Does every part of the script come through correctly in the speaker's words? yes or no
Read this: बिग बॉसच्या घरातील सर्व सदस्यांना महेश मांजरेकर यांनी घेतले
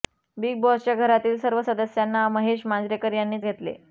yes